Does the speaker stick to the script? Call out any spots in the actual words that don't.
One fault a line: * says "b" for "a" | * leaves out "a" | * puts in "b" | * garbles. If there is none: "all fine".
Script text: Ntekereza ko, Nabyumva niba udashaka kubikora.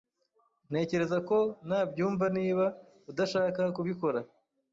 all fine